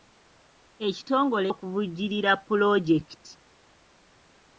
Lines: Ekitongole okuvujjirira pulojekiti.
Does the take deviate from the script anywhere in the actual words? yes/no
no